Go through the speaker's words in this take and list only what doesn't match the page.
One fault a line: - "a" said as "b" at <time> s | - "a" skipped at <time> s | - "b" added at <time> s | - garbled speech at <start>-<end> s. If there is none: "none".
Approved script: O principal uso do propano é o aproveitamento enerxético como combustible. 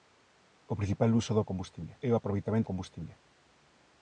- "propano" said as "combustible" at 1.5 s
- "enerxético como" skipped at 2.7 s